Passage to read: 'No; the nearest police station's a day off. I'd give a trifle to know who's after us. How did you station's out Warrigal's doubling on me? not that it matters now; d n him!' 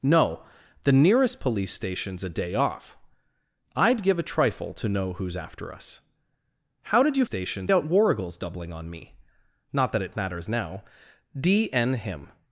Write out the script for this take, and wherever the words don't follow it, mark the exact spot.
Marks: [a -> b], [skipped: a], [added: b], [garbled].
'No; the nearest police station's a day off. I'd give a trifle to know who's after us. How did you station's out Warrigal's doubling on me? not that it matters now; d n him!'